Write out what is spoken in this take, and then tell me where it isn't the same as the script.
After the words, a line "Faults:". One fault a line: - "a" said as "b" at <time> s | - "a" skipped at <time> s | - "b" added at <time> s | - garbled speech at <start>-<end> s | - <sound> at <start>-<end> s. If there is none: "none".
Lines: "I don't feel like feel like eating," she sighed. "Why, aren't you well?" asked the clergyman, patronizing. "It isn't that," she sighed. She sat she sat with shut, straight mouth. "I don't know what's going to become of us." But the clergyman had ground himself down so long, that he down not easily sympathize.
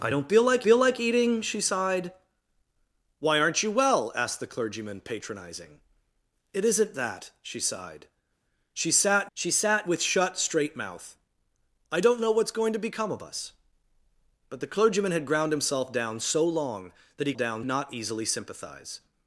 "I don't feel like feel like eating," she sighed. "Why, aren't you well?" asked the clergyman, patronizing. "It isn't that," she sighed. She sat she sat with shut, straight mouth. "I don't know what's going to become of us." But the clergyman had ground himself down so long, that he down not easily sympathize.
Faults:
none